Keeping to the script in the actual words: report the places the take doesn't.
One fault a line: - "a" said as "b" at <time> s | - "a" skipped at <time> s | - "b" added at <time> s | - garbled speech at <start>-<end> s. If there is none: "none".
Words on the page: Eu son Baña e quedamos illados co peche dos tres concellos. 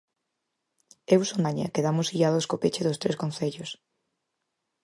none